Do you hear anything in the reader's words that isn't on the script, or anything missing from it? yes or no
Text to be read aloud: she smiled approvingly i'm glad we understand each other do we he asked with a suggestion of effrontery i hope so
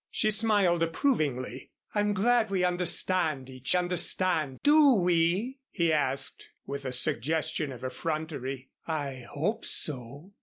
yes